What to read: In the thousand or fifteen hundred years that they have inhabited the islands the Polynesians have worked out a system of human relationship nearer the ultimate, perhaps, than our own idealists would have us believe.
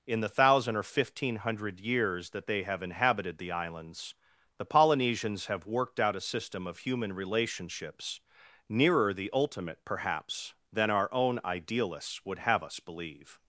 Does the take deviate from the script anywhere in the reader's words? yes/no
yes